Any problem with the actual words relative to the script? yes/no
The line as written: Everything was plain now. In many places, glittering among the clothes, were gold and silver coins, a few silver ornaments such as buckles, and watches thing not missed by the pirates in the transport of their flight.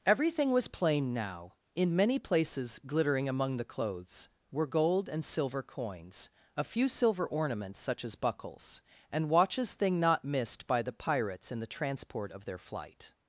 no